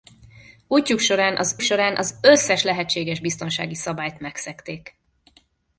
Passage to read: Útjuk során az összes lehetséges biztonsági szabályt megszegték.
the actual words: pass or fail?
fail